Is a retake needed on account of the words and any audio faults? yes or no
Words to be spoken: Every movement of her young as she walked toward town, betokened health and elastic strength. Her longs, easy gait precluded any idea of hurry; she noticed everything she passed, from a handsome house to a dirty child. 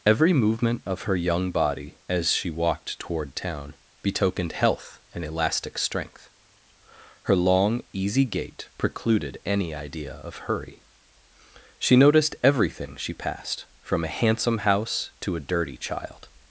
yes